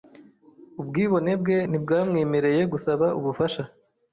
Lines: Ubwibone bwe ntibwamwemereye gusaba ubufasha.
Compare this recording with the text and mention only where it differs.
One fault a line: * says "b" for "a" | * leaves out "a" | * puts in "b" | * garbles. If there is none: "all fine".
all fine